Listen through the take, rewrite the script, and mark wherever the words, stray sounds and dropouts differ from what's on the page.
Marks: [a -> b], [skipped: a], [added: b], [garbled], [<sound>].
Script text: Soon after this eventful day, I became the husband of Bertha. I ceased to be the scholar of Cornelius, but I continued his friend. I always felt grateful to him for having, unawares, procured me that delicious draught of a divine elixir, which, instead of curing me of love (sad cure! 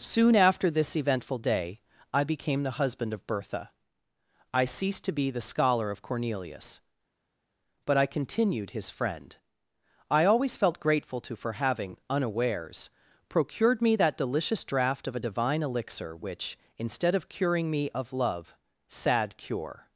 Soon after this eventful day, I became the husband of Bertha. I ceased to be the scholar of Cornelius, but I continued his friend. I always felt grateful to [skipped: him] for having, unawares, procured me that delicious draught of a divine elixir, which, instead of curing me of love (sad cure!